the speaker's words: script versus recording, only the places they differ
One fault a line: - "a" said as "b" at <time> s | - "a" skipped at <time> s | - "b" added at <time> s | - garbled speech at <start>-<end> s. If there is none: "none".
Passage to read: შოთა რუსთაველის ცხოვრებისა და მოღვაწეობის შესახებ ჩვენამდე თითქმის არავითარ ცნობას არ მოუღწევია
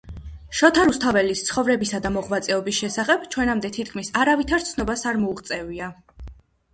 none